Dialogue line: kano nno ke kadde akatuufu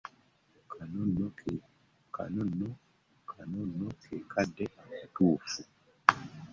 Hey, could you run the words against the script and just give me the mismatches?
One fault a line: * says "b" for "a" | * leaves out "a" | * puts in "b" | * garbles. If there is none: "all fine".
all fine